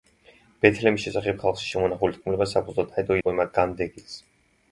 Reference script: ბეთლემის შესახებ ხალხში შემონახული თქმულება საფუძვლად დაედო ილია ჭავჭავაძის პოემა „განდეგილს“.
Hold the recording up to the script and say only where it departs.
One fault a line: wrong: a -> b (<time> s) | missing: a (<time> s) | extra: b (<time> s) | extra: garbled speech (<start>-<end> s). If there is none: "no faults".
missing: ილია ჭავჭავაძის (3.2 s)